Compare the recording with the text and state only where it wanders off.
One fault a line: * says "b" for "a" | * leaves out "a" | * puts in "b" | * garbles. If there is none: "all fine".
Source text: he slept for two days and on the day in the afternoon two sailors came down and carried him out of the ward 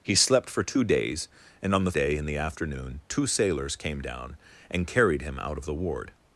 all fine